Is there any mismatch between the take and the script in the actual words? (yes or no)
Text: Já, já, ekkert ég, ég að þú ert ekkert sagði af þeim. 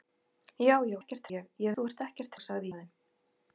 no